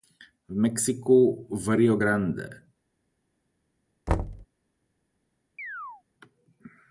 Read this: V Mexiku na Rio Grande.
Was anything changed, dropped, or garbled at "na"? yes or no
yes